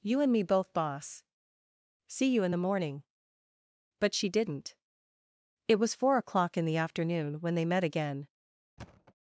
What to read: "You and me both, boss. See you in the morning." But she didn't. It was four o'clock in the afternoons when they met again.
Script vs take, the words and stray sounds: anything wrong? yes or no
yes